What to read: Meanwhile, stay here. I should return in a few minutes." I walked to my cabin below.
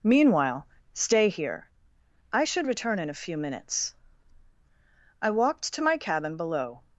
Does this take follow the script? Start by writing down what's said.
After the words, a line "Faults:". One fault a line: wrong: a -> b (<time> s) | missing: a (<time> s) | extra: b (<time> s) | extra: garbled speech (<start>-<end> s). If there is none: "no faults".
Meanwhile, stay here. I should return in a few minutes." I walked to my cabin below.
Faults:
no faults